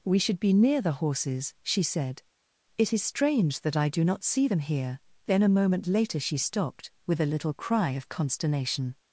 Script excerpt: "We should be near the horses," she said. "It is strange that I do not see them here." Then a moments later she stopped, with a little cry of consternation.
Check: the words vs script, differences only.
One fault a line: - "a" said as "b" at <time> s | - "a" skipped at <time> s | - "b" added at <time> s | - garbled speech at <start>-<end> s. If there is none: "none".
- "moments" said as "moment" at 5.5 s